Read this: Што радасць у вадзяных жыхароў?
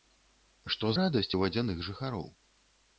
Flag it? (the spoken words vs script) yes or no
no